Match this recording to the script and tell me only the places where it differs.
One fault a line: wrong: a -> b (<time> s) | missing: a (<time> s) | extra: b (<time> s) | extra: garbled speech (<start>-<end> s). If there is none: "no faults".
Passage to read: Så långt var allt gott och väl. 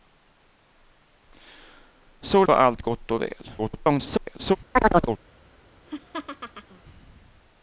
missing: långt (2.5 s)
extra: garbled speech (3.6-4.6 s)